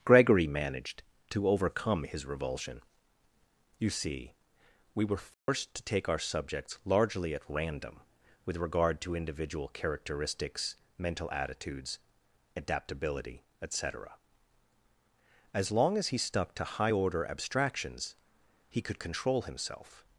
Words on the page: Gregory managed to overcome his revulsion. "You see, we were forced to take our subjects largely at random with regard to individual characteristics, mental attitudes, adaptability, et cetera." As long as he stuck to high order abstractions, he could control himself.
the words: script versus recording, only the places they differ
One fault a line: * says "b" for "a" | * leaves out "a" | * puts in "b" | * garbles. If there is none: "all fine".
all fine